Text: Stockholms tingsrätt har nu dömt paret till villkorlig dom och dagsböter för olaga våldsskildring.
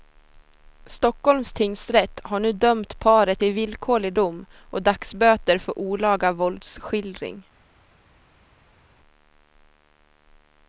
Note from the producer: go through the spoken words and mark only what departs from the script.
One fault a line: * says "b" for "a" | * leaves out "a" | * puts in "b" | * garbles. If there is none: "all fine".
all fine